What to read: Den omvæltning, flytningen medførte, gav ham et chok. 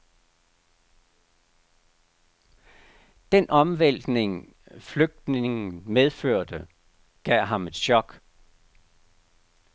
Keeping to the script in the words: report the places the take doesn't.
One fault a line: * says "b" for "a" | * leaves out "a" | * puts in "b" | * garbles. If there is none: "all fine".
all fine